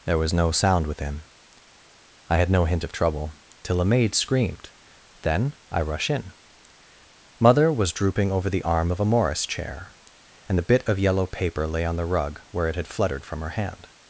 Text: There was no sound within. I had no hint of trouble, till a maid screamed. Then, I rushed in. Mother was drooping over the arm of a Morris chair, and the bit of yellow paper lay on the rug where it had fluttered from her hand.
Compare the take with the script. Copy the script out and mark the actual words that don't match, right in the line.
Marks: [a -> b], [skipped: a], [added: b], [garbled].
There was no sound within. I had no hint of trouble, till a maid screamed. Then, I [rushed -> rush] in. Mother was drooping over the arm of a Morris chair, and the bit of yellow paper lay on the rug where it had fluttered from her hand.